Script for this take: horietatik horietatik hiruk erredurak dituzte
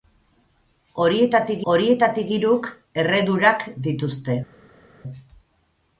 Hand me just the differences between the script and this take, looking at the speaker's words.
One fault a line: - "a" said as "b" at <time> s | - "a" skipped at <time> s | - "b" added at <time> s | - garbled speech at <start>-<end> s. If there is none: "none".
none